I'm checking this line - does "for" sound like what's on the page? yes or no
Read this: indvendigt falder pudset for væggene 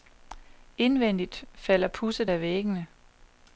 no